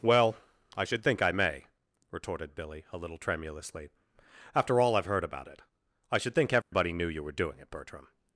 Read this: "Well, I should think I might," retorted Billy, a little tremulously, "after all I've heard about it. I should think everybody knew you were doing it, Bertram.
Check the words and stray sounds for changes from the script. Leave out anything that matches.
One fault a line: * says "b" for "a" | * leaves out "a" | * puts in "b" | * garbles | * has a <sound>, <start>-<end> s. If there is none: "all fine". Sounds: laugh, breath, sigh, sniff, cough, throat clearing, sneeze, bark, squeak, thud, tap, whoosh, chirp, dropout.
* says "may" for "might"
* has a dropout, 6.6-6.7 s